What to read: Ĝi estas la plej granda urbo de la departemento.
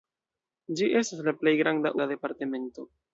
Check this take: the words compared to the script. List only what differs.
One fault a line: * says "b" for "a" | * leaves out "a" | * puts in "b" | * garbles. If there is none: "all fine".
* leaves out "urbo"